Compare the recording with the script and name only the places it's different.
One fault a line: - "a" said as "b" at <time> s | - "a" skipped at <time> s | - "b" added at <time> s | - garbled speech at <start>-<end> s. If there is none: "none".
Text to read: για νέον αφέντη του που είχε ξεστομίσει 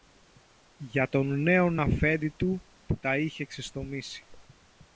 - "τον" added at 1.1 s
- "τα" added at 3.0 s